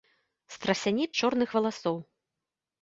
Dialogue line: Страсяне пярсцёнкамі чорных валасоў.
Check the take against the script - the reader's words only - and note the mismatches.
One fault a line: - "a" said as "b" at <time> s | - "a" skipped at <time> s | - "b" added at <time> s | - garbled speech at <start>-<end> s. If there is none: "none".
- "пярсцёнкамі" skipped at 1.1 s